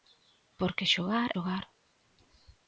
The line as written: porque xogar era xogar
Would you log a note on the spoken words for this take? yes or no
yes